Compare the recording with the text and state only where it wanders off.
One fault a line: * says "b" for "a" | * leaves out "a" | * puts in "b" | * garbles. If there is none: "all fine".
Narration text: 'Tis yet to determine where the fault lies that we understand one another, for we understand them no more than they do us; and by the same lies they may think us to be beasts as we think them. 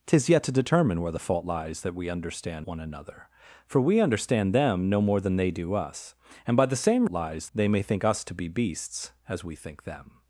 all fine